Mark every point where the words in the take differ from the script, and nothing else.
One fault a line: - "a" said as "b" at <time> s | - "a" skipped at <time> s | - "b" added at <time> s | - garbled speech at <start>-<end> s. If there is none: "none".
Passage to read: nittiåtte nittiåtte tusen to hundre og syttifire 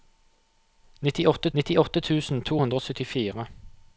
none